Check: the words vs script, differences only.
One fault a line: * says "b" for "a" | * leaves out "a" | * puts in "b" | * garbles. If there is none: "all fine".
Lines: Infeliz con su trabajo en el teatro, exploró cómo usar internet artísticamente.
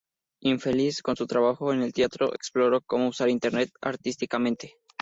all fine